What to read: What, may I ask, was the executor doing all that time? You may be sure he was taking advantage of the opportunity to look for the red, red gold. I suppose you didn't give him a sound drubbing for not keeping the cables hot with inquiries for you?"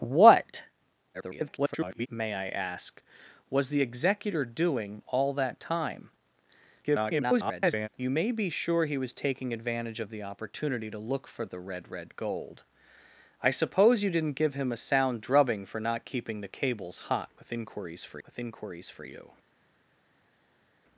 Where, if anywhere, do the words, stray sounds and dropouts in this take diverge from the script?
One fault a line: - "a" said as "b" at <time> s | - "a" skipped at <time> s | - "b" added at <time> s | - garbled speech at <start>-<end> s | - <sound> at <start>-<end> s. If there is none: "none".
- garbled speech at 1.1-2.1 s
- garbled speech at 6.8-7.9 s
- "with inquiries for" added at 18.3 s